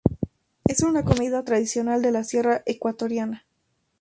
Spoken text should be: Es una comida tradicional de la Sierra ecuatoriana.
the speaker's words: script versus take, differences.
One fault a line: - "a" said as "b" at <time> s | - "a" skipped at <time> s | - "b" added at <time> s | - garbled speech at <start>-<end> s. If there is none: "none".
none